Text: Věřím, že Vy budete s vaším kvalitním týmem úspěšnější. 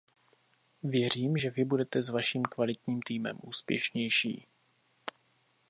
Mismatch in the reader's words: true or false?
false